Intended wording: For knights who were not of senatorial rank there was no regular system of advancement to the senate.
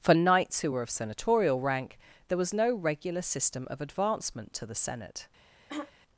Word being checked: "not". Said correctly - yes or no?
no